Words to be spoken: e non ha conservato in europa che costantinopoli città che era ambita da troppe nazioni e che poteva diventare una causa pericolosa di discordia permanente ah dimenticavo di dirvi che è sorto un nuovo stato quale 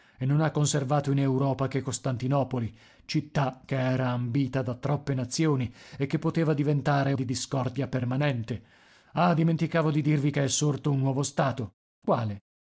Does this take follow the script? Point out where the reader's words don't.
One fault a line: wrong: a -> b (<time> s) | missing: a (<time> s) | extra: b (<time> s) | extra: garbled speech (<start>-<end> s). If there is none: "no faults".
missing: una causa pericolosa (7.1 s)